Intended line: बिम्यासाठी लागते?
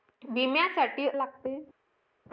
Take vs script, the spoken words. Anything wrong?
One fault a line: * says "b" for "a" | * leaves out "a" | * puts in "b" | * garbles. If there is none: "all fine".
all fine